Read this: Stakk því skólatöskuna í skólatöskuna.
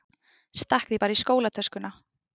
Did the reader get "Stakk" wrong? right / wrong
right